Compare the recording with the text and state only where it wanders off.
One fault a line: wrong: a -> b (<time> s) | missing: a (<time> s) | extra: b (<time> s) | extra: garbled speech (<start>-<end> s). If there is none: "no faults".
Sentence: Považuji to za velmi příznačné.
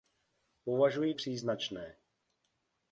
missing: to za velmi (1.1 s)